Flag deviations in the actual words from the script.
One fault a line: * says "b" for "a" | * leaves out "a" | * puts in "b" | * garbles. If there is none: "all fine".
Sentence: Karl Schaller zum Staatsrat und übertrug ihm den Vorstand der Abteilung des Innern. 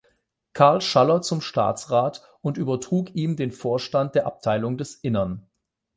all fine